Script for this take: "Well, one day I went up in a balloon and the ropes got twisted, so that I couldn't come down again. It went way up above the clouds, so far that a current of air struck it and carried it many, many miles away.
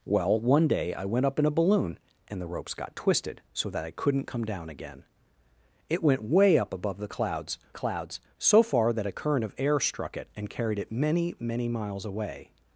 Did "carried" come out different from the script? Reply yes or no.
no